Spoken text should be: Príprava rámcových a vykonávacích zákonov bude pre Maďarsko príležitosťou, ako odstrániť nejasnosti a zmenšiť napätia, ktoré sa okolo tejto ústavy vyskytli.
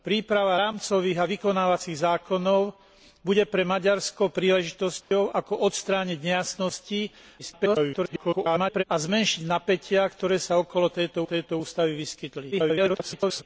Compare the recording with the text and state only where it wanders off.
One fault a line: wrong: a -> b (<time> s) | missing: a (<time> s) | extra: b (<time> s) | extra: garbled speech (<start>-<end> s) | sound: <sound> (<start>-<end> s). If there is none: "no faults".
sound: dropout (5.0-5.1 s)
extra: garbled speech (7.4-8.8 s)
extra: tejto (11.2 s)
extra: garbled speech (12.5-13.4 s)